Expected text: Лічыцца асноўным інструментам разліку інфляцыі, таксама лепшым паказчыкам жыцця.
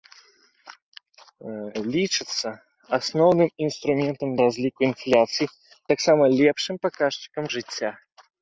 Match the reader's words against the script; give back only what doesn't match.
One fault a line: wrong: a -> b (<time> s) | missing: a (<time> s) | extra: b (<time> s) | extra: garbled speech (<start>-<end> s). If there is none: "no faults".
no faults